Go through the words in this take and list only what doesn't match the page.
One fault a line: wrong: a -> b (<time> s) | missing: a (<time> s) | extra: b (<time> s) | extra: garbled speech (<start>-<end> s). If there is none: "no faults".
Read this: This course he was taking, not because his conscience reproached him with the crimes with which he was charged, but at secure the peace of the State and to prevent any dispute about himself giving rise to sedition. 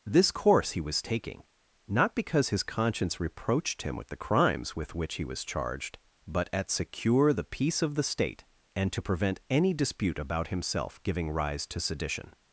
no faults